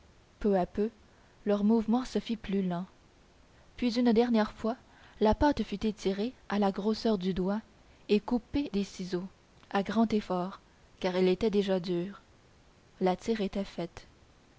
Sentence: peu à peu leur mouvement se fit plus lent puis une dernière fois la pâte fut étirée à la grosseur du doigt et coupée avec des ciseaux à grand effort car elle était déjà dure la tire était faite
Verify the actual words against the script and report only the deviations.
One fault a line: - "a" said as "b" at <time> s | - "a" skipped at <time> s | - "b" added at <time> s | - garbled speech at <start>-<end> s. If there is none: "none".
- "avec" skipped at 8.7 s